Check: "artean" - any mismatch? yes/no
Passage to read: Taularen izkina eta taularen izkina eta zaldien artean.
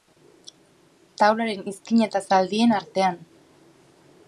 no